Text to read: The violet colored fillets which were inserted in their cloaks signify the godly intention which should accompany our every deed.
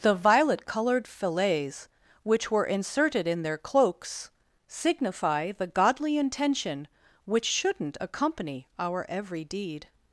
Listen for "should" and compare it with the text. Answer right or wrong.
wrong